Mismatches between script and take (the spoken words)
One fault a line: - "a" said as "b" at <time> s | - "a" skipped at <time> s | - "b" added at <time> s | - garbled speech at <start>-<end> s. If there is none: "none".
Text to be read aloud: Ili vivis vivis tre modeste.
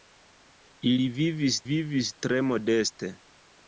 none